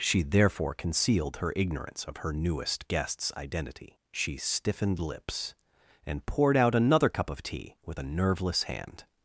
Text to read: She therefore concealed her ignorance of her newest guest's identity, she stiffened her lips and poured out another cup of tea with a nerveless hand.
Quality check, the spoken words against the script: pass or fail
fail